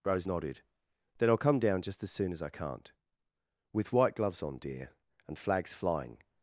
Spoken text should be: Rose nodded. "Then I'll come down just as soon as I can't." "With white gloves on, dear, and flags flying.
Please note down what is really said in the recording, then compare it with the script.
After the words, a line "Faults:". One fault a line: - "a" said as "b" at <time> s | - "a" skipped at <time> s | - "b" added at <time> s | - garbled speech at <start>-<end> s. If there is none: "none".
Rose nodded. "Then I'll come down just as soon as I can't." "With white gloves on, dear, and flags flying.
Faults:
none